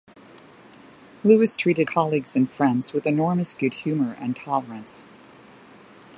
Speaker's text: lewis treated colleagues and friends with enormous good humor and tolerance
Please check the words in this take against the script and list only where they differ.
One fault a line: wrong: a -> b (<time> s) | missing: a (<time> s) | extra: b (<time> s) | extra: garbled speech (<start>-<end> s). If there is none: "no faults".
no faults